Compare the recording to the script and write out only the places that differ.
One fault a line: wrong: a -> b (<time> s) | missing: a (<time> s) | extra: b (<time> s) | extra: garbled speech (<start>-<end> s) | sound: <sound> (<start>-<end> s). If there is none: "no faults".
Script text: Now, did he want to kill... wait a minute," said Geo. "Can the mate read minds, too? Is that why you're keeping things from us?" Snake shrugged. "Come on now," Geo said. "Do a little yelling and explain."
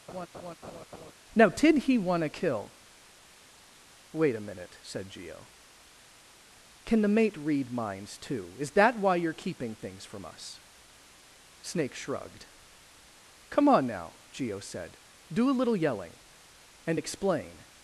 sound: laugh (0.1-1.1 s)